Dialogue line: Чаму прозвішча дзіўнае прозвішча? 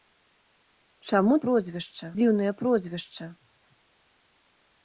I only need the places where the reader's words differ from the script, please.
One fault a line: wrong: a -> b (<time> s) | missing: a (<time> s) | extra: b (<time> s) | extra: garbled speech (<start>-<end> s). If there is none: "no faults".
no faults